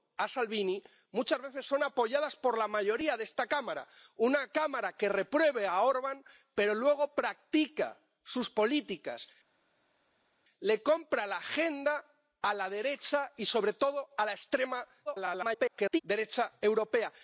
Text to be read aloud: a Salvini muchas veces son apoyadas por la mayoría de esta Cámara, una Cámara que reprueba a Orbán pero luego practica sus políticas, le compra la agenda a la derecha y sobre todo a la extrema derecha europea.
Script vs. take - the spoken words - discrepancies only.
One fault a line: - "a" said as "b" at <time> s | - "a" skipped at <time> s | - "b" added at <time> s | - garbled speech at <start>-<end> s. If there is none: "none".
- garbled speech at 15.1-16.0 s